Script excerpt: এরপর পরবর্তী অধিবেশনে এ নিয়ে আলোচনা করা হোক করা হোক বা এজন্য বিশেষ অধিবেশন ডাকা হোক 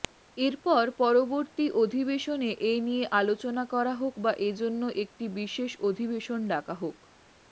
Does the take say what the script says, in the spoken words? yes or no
no